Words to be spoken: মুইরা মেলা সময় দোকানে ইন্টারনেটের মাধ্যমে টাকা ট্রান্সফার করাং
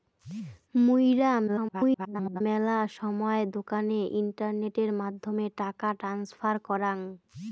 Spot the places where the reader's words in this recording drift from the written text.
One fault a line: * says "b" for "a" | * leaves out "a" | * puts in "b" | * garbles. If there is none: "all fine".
* garbles